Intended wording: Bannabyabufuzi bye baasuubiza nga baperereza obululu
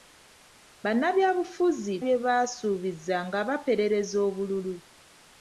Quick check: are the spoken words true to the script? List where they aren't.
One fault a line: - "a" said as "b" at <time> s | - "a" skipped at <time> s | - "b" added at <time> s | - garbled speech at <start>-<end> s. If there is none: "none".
none